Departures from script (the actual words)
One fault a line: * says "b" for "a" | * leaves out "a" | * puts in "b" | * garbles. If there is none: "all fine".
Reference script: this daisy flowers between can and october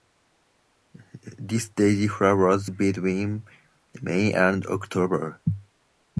* says "may" for "can"